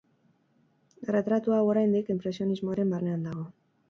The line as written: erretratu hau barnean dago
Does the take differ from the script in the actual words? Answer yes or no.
yes